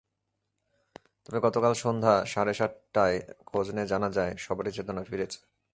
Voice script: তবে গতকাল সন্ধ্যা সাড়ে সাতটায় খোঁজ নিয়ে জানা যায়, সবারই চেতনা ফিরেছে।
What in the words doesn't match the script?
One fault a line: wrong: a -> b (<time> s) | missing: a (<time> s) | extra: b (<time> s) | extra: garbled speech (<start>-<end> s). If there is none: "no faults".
no faults